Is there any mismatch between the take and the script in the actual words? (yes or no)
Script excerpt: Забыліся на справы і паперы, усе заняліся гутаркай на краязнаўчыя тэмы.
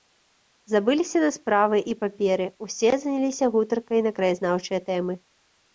no